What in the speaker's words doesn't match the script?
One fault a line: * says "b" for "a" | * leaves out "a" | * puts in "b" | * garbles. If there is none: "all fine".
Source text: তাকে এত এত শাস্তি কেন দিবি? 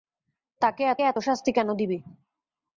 all fine